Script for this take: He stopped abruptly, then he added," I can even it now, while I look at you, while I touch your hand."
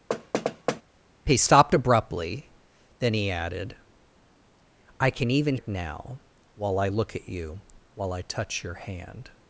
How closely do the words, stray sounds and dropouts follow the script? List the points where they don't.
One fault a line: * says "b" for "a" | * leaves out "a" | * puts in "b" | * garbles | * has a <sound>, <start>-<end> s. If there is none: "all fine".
* has a thud, 0.1-0.8 s